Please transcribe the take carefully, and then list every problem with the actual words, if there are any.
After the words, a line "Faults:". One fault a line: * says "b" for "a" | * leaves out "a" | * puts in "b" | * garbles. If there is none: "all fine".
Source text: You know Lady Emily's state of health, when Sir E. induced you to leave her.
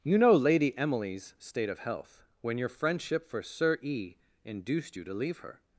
You know Lady Emily's state of health, when your friendship for Sir E. induced you to leave her.
Faults:
* puts in "your friendship for"